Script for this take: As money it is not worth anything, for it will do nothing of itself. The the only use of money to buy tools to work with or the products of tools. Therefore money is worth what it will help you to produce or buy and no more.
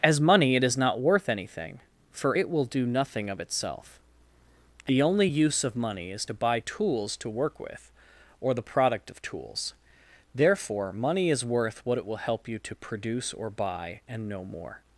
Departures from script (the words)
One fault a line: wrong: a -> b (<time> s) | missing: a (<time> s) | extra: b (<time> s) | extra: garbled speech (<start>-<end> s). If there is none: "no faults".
missing: the (5.0 s)
extra: is (6.1 s)
wrong: products -> product (8.6 s)